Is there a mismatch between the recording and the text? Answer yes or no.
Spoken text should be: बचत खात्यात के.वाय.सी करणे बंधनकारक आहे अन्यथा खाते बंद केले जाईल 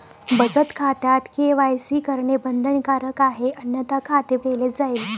yes